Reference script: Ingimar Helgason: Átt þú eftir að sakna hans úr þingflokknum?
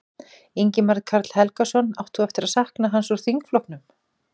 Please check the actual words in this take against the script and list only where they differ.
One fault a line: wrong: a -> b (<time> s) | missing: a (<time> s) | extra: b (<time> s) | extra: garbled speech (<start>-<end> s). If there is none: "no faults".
extra: Karl (1.1 s)